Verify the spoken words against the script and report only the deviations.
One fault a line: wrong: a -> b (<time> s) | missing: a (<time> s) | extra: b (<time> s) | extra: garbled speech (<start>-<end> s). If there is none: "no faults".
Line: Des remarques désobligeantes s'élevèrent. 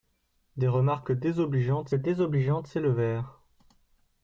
extra: désobligeantes (1.9 s)